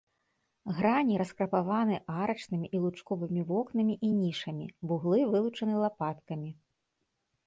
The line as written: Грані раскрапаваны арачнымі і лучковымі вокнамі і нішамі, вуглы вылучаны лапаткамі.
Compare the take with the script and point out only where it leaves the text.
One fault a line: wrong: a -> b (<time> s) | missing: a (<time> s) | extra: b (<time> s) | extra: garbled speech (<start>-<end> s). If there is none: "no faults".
no faults